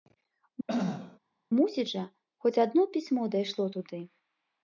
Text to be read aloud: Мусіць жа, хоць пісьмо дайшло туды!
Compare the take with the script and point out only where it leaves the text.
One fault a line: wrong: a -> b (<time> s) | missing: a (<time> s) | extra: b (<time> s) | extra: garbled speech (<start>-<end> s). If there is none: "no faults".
extra: адно (2.6 s)